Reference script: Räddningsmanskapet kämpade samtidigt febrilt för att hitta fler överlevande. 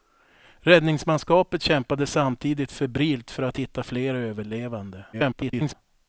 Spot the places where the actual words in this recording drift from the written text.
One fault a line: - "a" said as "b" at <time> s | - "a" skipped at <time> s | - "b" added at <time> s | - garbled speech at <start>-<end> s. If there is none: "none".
- garbled speech at 5.1-5.7 s